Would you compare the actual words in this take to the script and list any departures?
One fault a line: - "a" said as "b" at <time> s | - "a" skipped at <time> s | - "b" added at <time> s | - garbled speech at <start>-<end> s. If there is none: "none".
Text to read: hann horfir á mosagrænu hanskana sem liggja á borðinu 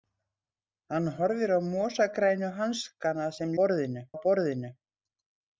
- "liggja" said as "borðinu" at 3.6 s